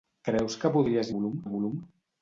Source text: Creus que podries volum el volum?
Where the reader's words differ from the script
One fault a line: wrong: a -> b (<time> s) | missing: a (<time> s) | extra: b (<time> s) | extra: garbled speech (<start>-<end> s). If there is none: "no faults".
no faults